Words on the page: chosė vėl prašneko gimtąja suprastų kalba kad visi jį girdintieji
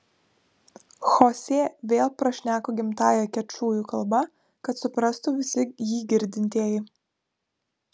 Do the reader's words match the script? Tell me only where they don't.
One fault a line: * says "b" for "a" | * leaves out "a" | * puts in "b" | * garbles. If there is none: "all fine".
* says "kečujų" for "suprastų"
* puts in "suprastų"